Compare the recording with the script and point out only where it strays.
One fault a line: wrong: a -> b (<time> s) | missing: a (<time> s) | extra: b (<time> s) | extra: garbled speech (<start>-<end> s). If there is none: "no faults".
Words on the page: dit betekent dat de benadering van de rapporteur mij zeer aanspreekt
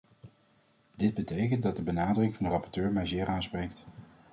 no faults